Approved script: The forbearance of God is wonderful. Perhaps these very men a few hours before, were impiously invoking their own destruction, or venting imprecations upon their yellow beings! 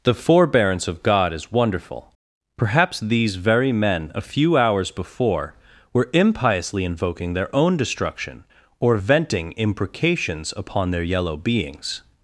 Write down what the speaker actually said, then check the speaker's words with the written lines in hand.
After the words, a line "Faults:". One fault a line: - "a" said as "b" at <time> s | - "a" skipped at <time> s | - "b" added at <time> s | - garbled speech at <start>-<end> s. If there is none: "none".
The forbearance of God is wonderful. Perhaps these very men a few hours before, were impiously invoking their own destruction, or venting imprecations upon their yellow beings!
Faults:
none